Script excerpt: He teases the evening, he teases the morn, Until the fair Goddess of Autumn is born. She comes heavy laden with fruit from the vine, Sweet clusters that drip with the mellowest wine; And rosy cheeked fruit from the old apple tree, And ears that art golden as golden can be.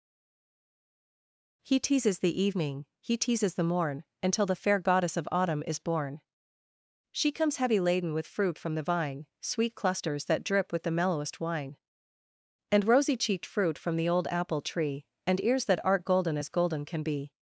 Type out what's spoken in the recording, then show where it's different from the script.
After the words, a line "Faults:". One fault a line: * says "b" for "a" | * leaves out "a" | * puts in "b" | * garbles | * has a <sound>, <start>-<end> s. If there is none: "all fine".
He teases the evening, he teases the morn, Until the fair Goddess of Autumn is born. She comes heavy laden with fruit from the vine, Sweet clusters that drip with the mellowest wine; And rosy cheeked fruit from the old apple tree, And ears that art golden as golden can be.
Faults:
all fine